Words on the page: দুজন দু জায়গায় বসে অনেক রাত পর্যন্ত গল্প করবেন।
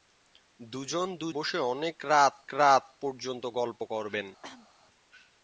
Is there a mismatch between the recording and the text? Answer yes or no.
yes